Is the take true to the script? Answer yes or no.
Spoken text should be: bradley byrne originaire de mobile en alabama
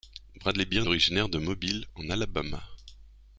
yes